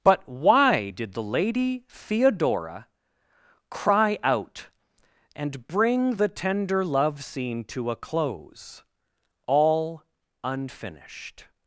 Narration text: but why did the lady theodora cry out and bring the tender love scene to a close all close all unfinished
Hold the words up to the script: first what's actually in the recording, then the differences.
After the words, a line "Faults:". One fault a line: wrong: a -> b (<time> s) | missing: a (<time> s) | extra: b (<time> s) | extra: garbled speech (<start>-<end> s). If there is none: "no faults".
but why did the lady theodora cry out and bring the tender love scene to a close all unfinished
Faults:
missing: close all (10.0 s)